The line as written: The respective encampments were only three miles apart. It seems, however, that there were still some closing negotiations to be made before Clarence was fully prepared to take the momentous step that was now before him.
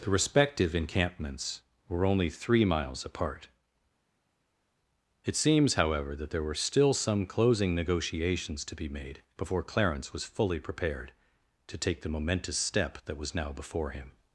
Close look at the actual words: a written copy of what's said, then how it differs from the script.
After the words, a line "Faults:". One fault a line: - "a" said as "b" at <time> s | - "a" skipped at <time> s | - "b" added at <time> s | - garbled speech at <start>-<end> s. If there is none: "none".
The respective encampments were only three miles apart. It seems, however, that there were still some closing negotiations to be made before Clarence was fully prepared to take the momentous step that was now before him.
Faults:
none